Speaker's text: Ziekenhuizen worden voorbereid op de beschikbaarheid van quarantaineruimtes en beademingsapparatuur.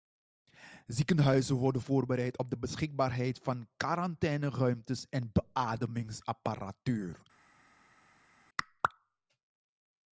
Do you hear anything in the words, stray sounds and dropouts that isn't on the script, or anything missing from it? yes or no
no